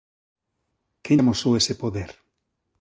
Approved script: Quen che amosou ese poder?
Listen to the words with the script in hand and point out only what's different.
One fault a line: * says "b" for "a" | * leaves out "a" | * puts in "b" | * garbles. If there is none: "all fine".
* leaves out "che"